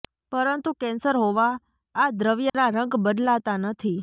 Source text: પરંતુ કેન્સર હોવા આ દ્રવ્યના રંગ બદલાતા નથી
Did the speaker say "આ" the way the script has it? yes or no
yes